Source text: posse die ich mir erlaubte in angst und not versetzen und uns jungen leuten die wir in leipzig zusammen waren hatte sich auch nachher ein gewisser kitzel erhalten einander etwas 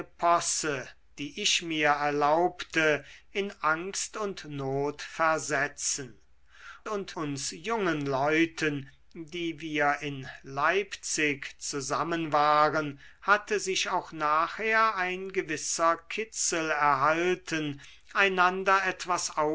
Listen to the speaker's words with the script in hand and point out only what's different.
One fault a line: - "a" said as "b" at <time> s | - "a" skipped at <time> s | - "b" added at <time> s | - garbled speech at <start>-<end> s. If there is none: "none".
none